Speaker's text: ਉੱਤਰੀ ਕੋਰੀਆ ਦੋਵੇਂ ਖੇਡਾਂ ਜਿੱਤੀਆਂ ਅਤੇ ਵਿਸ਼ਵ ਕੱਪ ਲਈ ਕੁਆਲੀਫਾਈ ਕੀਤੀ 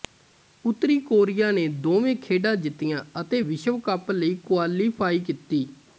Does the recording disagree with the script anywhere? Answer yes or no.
yes